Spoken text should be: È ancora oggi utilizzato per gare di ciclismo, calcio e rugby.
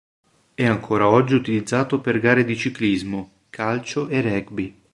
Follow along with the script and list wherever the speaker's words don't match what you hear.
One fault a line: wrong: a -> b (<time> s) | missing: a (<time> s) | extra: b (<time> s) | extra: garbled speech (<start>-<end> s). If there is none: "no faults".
no faults